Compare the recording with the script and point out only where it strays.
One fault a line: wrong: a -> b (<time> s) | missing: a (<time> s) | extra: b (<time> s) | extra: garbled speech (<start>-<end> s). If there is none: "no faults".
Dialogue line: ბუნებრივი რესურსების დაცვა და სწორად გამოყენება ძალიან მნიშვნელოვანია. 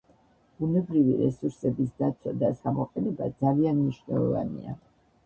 missing: სწორად (2.5 s)